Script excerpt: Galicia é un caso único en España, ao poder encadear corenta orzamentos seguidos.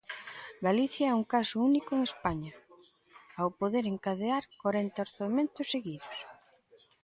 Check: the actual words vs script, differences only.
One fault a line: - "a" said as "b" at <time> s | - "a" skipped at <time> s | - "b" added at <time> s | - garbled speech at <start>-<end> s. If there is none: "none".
none